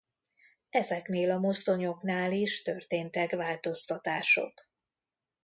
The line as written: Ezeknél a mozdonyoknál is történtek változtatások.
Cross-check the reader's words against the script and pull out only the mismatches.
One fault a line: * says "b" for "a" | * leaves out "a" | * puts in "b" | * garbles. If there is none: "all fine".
all fine